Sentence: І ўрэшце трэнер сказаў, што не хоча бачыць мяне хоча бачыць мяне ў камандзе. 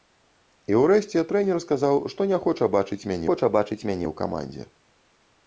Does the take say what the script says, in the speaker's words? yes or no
yes